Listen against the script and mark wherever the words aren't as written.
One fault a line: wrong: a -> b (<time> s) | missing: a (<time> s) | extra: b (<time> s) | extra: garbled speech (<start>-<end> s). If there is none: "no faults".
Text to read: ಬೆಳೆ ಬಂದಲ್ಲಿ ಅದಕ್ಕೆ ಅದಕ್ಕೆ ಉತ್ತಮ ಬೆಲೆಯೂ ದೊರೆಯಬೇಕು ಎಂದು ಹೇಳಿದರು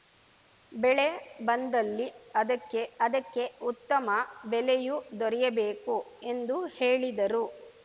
no faults